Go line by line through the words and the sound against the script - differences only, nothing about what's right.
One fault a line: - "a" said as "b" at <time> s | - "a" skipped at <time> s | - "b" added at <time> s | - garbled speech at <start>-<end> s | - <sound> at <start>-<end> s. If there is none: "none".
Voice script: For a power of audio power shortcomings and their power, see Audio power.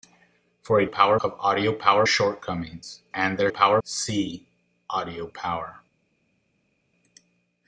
none